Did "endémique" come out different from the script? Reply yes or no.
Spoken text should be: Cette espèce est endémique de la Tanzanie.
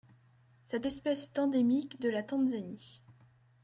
no